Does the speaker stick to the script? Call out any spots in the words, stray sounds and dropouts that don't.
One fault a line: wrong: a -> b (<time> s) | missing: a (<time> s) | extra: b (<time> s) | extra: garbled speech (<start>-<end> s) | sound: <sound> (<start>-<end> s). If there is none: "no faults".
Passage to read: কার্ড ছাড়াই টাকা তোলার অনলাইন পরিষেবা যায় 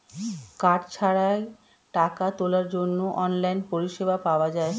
extra: জন্য (2.7 s)
extra: পাওয়া (4.3 s)